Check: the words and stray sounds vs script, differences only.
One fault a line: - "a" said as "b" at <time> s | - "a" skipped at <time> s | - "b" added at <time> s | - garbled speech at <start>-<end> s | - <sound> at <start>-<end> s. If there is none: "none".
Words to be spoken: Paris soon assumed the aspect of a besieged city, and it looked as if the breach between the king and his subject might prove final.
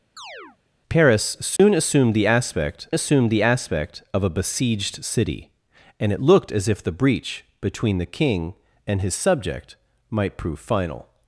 - chirp at 0.2-0.6 s
- dropout at 1.6-1.6 s
- "assumed the aspect" added at 2.9 s